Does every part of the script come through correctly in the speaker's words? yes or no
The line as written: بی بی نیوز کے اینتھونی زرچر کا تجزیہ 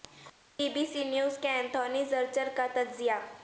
no